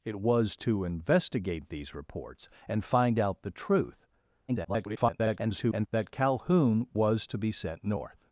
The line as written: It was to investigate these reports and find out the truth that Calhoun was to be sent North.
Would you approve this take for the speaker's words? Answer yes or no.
no